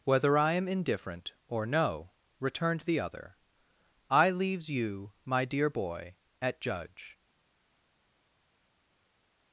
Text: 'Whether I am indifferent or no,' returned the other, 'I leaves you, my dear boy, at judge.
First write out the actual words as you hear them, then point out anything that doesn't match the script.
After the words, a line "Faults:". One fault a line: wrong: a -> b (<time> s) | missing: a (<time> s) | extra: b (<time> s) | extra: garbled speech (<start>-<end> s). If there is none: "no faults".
'Whether I am indifferent or no,' returned the other, 'I leaves you, my dear boy, at judge.
Faults:
no faults